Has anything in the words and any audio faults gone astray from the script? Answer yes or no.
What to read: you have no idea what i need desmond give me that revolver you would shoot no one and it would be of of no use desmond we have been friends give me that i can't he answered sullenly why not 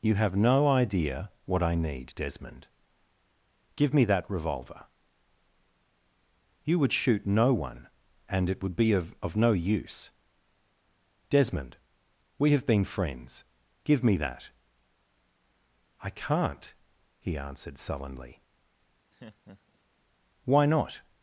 yes